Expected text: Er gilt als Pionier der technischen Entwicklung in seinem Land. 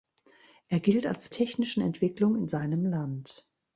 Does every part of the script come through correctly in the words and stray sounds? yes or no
no